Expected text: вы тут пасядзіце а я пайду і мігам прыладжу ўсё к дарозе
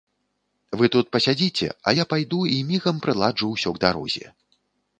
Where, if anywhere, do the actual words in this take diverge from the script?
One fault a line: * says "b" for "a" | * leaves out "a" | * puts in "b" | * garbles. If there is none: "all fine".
all fine